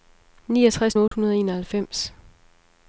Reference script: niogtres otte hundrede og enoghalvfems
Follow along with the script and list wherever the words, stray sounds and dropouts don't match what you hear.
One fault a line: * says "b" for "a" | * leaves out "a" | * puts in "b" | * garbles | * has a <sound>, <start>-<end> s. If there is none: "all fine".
* has a dropout, 1.1-1.1 s